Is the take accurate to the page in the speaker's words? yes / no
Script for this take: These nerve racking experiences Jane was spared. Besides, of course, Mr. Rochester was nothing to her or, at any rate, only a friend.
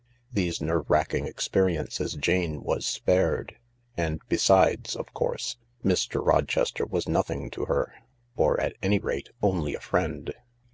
no